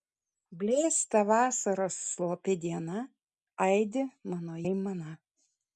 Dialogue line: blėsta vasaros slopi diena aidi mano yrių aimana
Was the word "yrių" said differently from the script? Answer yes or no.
yes